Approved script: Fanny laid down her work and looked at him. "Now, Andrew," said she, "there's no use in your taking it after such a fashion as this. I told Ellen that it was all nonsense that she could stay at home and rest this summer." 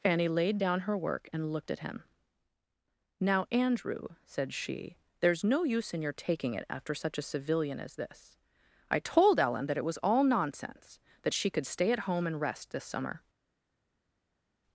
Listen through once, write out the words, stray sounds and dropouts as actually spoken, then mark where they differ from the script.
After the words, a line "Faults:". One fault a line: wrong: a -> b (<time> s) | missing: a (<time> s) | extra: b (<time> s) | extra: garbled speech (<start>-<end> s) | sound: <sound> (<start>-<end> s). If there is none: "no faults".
Fanny laid down her work and looked at him. "Now, Andrew," said she, "there's no use in your taking it after such a civilian as this. I told Ellen that it was all nonsense that she could stay at home and rest this summer."
Faults:
wrong: fashion -> civilian (7.3 s)